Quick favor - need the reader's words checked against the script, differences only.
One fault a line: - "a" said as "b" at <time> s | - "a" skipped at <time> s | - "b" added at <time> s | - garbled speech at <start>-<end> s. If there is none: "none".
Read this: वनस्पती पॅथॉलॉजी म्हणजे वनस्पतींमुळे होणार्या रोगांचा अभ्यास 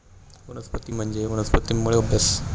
- "पॅथॉलॉजी" skipped at 0.9 s
- "होणार्या रोगांचा" skipped at 2.0 s